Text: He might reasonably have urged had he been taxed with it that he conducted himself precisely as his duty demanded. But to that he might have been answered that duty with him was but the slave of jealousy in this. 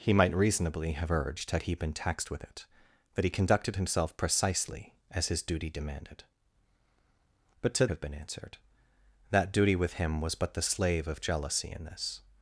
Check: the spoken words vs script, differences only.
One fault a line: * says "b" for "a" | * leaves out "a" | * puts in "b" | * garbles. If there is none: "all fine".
* leaves out "that he might"